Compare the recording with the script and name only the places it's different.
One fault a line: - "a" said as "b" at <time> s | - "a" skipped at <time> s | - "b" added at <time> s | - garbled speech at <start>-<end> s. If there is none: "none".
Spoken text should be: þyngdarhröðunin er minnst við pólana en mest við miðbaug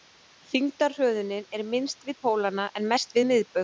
none